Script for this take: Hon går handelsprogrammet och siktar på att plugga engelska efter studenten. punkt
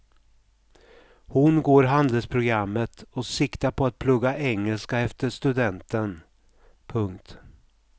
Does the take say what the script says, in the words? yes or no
yes